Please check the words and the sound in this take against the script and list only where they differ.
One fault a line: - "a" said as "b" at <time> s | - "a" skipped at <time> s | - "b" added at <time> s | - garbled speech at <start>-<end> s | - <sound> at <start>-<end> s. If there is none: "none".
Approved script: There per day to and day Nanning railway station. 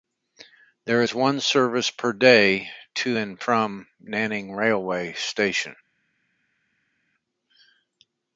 - "is one service" added at 1.0 s
- "day" said as "from" at 3.4 s